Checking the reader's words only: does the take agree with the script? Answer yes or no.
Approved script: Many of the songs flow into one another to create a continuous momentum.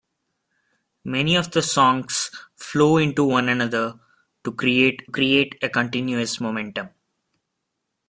no